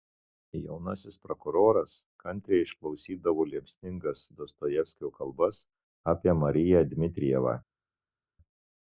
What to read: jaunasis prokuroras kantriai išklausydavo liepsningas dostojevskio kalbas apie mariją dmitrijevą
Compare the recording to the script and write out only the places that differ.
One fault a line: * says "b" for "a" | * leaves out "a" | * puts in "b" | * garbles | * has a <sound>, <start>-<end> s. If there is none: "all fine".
all fine